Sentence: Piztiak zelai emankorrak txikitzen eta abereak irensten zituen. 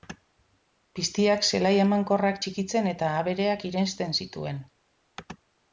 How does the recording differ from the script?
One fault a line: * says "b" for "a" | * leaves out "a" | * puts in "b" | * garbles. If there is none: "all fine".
all fine